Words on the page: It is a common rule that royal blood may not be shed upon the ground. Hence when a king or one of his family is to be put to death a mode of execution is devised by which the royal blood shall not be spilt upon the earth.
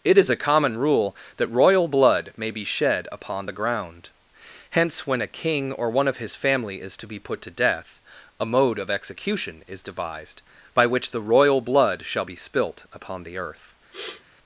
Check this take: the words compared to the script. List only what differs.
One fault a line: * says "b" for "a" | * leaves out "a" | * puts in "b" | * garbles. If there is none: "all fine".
* leaves out "not"
* leaves out "not"